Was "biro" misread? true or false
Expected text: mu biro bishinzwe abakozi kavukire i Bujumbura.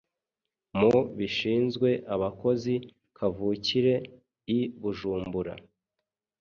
true